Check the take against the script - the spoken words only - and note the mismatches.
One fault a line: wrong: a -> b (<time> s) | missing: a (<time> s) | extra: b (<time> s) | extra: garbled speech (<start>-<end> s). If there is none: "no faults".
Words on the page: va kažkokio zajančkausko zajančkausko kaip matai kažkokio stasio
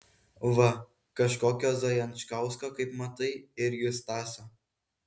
missing: zajančkausko (2.7 s)
wrong: kažkokio -> irgi (3.7 s)